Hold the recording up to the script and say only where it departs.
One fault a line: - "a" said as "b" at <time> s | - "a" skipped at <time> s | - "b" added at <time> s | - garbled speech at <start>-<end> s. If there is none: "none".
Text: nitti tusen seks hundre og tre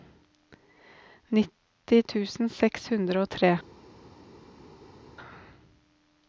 none